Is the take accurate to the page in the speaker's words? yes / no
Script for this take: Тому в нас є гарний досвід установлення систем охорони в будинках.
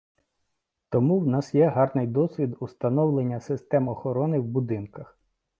yes